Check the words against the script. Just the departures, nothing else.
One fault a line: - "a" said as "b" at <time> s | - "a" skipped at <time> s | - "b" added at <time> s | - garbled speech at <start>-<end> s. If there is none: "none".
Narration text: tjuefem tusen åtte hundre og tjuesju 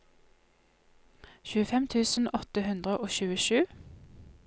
none